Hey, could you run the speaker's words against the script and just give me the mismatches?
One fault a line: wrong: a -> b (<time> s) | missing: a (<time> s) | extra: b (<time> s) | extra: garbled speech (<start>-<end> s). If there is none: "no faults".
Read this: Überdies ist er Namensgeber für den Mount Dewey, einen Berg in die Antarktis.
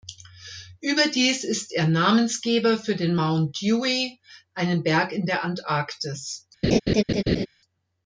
wrong: die -> der (5.2 s)